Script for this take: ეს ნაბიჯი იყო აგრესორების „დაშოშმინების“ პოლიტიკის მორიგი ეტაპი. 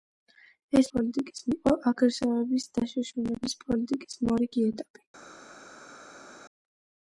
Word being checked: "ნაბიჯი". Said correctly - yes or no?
no